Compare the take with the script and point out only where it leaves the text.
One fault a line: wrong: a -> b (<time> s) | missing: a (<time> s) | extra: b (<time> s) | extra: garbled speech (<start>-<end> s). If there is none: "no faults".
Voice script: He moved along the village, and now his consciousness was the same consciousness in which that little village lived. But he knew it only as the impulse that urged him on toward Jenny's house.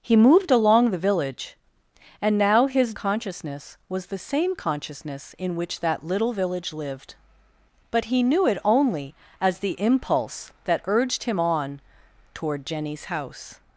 no faults